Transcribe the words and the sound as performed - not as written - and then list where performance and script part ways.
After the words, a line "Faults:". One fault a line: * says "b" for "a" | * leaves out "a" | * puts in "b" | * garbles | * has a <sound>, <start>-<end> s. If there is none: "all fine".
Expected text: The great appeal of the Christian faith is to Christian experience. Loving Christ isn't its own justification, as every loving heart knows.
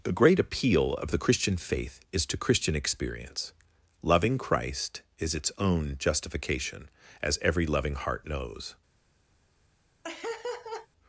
The great appeal of the Christian faith is to Christian experience. Loving Christ is its own justification, as every loving heart knows.
Faults:
* says "is" for "isn't"
* has a laugh, 10.0-10.9 s